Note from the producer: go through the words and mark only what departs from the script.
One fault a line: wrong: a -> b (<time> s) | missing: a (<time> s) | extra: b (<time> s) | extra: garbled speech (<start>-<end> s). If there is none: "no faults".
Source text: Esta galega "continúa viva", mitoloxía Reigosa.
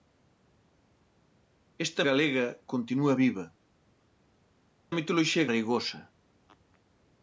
no faults